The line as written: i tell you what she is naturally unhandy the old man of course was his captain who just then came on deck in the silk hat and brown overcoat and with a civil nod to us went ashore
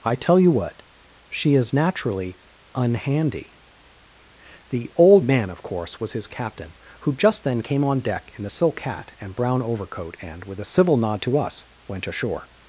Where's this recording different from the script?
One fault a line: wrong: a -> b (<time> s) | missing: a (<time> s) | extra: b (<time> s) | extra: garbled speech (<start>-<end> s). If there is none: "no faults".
no faults